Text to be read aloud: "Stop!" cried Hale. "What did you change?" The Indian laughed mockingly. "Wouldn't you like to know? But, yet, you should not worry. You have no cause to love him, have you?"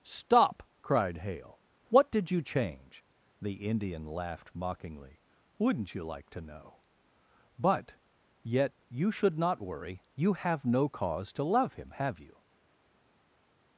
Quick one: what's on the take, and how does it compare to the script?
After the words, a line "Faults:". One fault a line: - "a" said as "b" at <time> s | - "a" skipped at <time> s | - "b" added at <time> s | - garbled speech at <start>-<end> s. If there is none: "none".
"Stop!" cried Hale. "What did you change?" The Indian laughed mockingly. "Wouldn't you like to know? But, yet, you should not worry. You have no cause to love him, have you?"
Faults:
none